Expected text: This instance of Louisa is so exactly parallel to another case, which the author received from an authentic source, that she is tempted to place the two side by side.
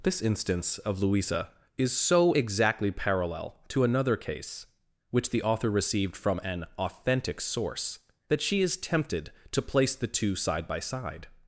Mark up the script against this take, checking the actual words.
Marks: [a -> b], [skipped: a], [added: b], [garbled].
This instance of Louisa is so exactly parallel to another case, which the author received from an authentic source, that she is tempted to place the two side by side.